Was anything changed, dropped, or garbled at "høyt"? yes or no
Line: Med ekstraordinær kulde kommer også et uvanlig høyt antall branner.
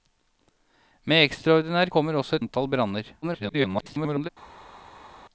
yes